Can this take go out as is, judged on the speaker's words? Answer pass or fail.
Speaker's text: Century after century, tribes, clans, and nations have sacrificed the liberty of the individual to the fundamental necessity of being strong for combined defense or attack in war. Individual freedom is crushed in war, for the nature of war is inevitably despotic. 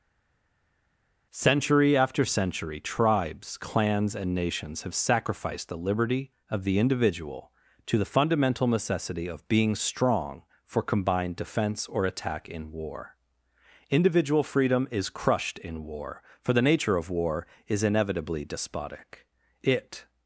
fail